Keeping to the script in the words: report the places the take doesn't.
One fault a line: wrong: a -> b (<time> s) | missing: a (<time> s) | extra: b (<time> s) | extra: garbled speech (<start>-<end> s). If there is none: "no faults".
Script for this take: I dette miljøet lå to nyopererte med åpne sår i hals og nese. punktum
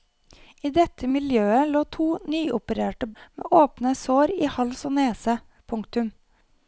no faults